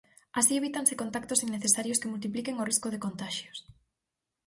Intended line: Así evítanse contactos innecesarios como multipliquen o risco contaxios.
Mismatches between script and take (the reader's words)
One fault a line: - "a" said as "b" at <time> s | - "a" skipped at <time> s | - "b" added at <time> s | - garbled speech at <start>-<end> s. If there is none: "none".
- "como" said as "que" at 2.0 s
- "de" added at 2.9 s